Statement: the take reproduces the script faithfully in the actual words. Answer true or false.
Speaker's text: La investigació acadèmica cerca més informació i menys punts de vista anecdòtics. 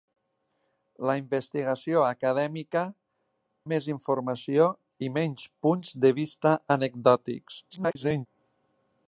false